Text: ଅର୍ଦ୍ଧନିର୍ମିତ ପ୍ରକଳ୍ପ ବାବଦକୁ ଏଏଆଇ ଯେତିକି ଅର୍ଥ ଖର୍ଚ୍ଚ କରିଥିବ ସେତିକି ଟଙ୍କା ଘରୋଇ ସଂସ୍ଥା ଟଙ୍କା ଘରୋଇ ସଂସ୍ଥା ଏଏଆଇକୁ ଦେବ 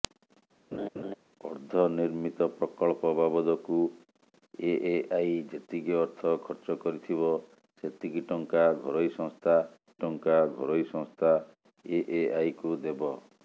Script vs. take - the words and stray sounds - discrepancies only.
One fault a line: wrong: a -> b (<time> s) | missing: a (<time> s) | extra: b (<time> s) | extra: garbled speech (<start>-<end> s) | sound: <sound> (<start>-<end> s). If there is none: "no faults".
sound: laugh (0.7-1.1 s)